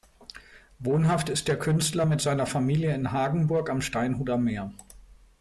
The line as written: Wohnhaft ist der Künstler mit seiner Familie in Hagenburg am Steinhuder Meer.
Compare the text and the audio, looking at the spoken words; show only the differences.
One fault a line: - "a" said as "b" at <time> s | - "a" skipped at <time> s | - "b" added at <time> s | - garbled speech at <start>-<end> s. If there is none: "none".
none